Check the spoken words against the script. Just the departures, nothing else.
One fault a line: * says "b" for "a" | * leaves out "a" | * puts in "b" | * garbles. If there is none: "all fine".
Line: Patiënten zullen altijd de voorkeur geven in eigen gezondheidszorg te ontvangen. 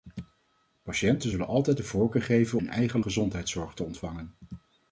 all fine